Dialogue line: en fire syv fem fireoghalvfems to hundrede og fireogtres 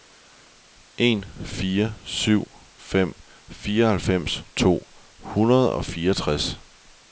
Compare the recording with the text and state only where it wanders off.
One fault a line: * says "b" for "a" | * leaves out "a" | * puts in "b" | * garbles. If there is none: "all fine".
all fine